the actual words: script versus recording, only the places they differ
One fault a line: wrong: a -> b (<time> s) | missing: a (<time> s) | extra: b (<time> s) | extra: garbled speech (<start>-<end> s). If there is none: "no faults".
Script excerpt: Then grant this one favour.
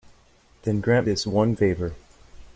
no faults